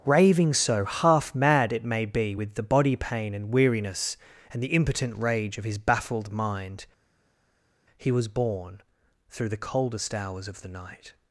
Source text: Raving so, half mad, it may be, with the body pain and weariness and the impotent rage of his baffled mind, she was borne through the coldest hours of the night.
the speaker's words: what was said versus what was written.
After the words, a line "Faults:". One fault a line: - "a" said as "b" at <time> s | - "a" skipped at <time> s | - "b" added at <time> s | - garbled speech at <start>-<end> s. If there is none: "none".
Raving so, half mad, it may be, with the body pain and weariness and the impotent rage of his baffled mind, he was borne through the coldest hours of the night.
Faults:
- "she" said as "he" at 8.0 s